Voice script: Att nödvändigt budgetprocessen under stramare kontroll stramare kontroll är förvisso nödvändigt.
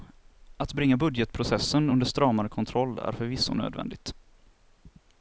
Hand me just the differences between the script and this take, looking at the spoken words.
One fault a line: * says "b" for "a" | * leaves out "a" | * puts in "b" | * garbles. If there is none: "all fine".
* says "bringa" for "nödvändigt"
* leaves out "stramare kontroll"